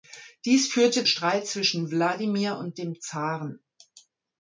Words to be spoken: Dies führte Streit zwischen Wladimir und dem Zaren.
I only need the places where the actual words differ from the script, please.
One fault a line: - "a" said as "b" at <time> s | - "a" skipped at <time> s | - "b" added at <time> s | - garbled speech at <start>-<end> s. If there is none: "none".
none